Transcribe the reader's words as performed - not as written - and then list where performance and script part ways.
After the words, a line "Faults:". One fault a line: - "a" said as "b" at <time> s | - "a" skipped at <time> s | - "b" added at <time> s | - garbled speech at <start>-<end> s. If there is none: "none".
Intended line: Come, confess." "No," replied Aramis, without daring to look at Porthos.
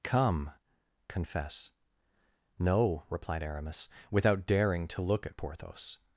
Come, confess." "No," replied Aramis, without daring to look at Porthos.
Faults:
none